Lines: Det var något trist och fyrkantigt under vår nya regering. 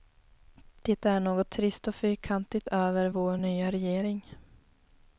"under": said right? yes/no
no